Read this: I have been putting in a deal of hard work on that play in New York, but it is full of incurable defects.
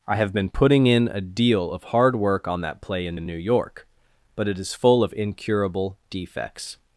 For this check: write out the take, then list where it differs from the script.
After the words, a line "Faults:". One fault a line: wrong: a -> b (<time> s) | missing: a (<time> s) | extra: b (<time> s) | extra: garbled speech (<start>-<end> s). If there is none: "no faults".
I have been putting in a deal of hard work on that play in in New York, but it is full of incurable defects.
Faults:
extra: in (3.1 s)